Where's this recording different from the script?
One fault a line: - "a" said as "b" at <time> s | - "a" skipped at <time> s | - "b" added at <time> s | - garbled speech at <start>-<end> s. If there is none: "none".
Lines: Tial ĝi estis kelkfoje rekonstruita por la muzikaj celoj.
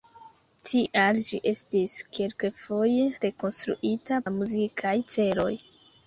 - "por" skipped at 4.2 s